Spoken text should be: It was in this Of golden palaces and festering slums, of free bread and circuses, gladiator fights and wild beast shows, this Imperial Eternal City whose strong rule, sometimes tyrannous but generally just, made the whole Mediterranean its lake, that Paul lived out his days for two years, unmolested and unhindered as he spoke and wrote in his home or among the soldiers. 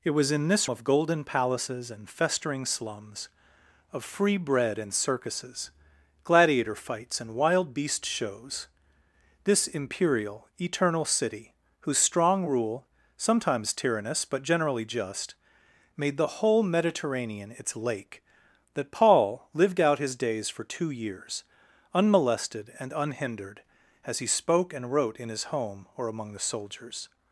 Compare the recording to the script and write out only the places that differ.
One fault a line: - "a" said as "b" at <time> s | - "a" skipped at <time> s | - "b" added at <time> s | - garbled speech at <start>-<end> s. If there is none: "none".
none